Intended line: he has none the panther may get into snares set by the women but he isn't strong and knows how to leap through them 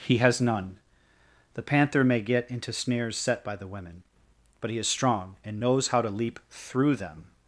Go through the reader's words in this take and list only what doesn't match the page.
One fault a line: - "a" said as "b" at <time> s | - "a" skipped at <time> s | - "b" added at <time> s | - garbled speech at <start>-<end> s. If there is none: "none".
- "isn't" said as "is" at 4.8 s